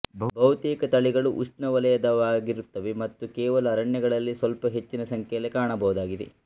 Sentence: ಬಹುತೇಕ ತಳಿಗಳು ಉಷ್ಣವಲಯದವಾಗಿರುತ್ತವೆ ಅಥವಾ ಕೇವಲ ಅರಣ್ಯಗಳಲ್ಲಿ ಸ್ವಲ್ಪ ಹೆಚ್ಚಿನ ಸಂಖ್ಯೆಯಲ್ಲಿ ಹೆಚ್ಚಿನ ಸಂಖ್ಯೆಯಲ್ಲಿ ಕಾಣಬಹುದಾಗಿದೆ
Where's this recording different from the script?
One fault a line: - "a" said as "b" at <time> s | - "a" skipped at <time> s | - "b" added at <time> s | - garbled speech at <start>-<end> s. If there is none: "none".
- "ಅಥವಾ" said as "ಮತ್ತು" at 3.0 s
- "ಹೆಚ್ಚಿನ ಸಂಖ್ಯೆಯಲ್ಲಿ" skipped at 5.5 s